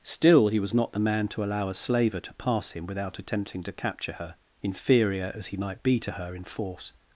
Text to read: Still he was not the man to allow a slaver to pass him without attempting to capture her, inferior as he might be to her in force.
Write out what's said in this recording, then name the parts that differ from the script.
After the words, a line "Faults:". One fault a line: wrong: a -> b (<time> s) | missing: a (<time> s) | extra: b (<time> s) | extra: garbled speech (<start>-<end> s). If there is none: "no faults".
Still he was not the man to allow a slaver to pass him without attempting to capture her, inferior as he might be to her in force.
Faults:
no faults